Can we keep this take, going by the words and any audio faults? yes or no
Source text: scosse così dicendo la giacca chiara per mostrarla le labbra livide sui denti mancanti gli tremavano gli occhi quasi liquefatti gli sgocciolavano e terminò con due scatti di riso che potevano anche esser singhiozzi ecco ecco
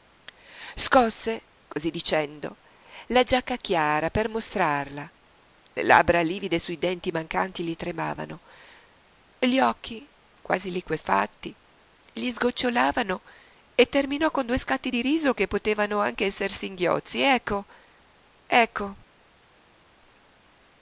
yes